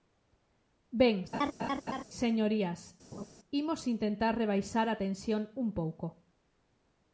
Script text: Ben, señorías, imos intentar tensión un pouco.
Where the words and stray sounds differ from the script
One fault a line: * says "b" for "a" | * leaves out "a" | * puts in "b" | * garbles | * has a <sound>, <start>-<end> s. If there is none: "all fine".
* has a laugh, 1.3-2.0 s
* has a laugh, 3.1-3.3 s
* puts in "rebaixar a"